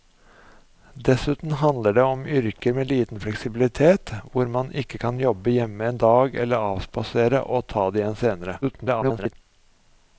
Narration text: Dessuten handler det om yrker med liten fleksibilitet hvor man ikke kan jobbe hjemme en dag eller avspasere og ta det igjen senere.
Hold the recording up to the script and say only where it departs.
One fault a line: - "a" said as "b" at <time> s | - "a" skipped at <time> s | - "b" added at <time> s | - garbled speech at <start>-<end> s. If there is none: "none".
- garbled speech at 8.6-9.3 s